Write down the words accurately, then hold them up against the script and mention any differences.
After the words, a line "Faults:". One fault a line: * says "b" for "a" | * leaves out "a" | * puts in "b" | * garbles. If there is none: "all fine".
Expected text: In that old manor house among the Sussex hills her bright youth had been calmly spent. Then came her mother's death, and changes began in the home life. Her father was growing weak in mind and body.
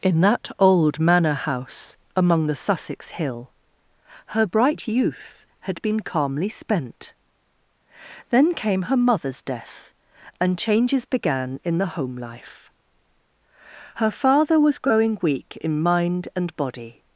In that old manor house among the Sussex hill her bright youth had been calmly spent. Then came her mother's death, and changes began in the home life. Her father was growing weak in mind and body.
Faults:
* says "hill" for "hills"